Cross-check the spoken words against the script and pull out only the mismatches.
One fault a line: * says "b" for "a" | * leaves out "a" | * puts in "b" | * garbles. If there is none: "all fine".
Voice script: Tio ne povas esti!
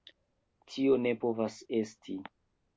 all fine